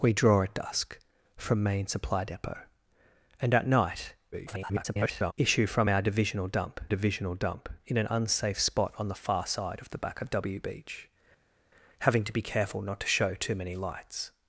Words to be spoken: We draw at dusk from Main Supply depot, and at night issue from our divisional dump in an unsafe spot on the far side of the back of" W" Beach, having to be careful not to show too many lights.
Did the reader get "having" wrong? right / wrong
right